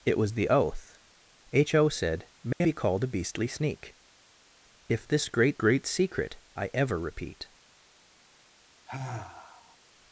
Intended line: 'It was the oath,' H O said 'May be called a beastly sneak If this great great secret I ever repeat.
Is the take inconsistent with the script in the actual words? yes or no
no